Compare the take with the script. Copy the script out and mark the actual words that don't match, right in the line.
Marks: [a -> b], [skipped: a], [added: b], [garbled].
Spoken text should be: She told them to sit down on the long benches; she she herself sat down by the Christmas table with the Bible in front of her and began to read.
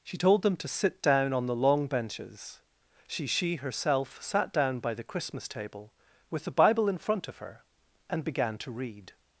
She told them to sit down on the long benches; she she herself sat down by the Christmas table with the Bible in front of her and began to read.